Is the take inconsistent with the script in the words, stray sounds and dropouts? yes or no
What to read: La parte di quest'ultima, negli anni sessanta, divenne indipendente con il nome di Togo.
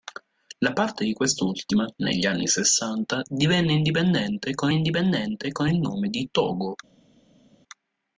yes